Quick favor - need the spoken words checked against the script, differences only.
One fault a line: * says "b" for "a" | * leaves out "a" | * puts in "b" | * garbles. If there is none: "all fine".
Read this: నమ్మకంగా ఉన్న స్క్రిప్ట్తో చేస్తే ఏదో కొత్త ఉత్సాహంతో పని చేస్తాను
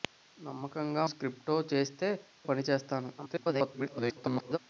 * leaves out "ఉన్న"
* leaves out "ఏదో కొత్త ఉత్సాహంతో"
* garbles